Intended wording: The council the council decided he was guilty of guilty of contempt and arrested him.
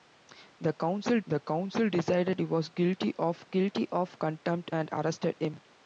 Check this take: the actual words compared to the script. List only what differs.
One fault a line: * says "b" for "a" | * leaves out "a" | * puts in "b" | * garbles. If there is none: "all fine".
all fine